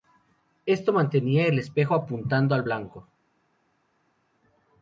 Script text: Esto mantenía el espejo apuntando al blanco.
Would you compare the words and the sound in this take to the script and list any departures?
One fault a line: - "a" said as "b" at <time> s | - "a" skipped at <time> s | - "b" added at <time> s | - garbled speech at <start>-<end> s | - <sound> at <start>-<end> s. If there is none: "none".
none